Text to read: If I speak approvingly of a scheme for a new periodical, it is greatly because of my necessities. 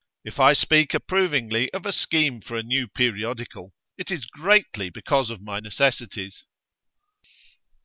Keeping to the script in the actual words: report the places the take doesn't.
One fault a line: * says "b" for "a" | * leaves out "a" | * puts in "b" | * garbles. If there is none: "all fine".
all fine